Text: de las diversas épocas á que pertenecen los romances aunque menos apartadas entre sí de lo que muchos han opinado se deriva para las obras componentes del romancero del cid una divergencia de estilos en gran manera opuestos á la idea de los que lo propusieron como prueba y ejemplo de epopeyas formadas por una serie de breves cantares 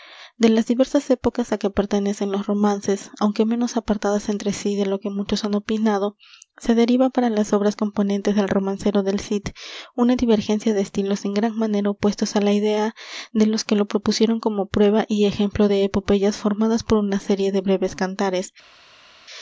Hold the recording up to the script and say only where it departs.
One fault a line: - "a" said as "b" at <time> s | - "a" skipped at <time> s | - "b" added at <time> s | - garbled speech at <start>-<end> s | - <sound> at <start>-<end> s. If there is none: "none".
none